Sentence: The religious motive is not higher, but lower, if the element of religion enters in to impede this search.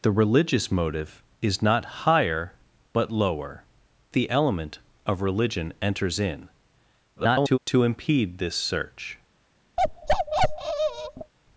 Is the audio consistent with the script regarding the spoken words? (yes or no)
no